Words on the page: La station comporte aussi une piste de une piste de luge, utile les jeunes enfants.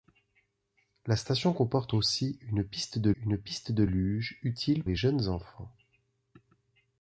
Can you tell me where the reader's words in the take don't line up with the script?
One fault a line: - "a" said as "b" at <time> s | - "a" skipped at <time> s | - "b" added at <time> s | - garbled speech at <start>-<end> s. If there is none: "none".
none